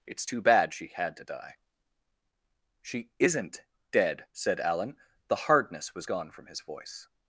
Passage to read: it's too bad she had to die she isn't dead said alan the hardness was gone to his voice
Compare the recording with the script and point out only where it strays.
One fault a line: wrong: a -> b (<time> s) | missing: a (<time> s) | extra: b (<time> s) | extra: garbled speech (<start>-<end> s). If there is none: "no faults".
wrong: to -> from (6.3 s)